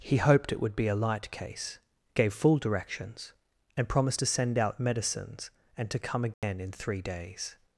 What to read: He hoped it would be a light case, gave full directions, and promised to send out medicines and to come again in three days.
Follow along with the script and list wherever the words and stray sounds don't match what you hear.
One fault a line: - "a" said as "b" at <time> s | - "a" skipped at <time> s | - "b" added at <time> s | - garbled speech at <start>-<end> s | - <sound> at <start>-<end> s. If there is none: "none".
- dropout at 6.3-6.4 s